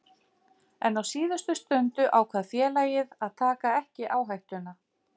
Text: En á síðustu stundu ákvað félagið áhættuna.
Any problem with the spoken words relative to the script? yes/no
yes